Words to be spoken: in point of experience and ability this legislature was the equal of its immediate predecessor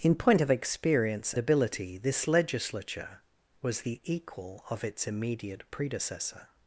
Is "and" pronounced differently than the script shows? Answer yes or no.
yes